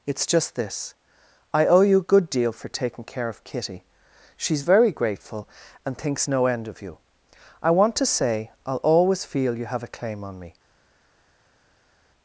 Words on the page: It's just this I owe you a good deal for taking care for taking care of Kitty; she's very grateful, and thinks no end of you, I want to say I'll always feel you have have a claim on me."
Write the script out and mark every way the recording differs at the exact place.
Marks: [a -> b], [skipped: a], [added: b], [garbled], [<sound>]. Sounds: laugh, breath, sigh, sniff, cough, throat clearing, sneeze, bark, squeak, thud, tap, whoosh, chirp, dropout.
It's just this I owe you a good deal for taking care [skipped: for taking care] of Kitty; she's very grateful, and thinks no end of you, I want to say I'll always feel you have [skipped: have] a claim on me."